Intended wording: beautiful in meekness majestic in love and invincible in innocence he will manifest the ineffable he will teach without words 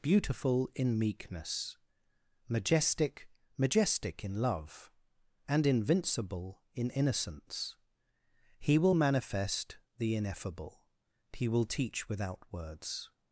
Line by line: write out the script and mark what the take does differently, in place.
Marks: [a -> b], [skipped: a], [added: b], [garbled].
beautiful in meekness majestic [added: majestic] in love and invincible in innocence he will manifest the ineffable he will teach without words